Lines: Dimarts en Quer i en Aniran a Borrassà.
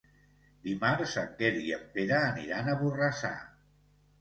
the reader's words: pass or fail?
fail